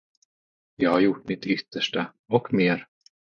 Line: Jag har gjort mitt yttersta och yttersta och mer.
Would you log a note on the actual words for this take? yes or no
yes